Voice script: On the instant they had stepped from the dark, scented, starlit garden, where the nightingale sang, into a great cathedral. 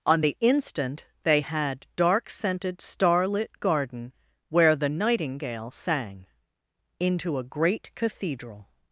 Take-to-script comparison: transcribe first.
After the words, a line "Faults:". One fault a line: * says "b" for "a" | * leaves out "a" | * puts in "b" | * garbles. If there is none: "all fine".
On the instant they had dark, scented, starlit garden, where the nightingale sang, into a great cathedral.
Faults:
* leaves out "stepped from the"